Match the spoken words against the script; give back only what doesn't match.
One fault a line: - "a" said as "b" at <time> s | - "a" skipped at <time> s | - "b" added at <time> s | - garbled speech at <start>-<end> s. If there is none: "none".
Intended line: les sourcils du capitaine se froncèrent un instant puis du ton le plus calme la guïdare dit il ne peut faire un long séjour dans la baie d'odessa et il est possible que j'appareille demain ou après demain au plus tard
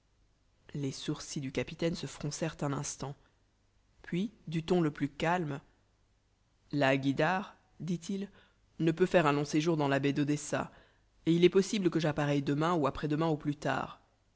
none